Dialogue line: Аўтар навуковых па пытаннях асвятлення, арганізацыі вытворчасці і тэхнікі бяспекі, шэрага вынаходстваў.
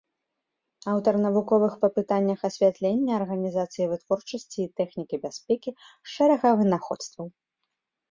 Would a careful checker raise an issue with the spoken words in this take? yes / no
no